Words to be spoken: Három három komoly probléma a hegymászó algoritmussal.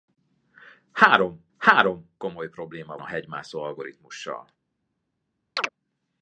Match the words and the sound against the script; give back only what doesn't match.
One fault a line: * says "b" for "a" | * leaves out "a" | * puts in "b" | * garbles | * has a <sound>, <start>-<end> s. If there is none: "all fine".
* has a chirp, 5.6-5.7 s